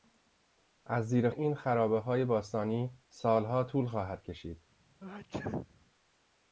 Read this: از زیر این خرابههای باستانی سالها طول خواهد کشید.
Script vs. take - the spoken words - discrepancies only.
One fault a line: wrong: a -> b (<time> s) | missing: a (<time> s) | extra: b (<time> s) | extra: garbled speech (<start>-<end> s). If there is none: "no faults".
no faults